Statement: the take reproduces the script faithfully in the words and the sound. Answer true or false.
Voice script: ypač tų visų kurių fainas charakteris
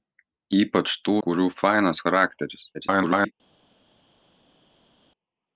false